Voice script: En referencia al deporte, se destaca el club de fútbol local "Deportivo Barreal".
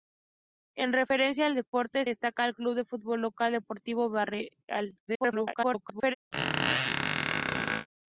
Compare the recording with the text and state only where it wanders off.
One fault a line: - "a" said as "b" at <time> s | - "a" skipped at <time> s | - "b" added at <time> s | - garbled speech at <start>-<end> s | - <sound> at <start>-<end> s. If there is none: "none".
- "se" skipped at 2.0 s
- garbled speech at 5.1-6.1 s
- squeak at 6.3-7.9 s